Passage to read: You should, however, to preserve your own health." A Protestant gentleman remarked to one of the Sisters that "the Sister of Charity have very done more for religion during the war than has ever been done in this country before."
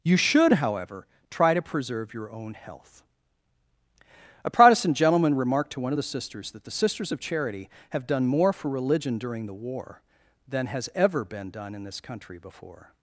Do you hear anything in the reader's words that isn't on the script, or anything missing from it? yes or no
yes